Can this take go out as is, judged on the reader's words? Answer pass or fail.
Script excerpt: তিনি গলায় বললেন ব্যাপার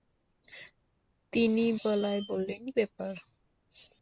pass